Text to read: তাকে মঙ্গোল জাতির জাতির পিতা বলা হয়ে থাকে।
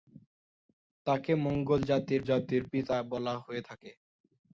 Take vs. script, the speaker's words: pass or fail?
pass